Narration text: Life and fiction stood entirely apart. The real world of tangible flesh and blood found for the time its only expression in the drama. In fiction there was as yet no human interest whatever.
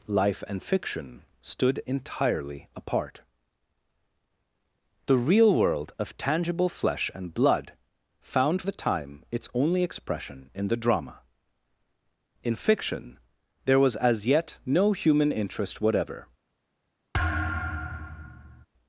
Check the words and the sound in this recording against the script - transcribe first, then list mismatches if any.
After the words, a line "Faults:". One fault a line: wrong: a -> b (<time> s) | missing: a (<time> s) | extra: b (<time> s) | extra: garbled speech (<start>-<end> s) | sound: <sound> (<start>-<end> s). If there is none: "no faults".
Life and fiction stood entirely apart. The real world of tangible flesh and blood found the time its only expression in the drama. In fiction there was as yet no human interest whatever.
Faults:
missing: for (8.6 s)
sound: thud (17.1-18.7 s)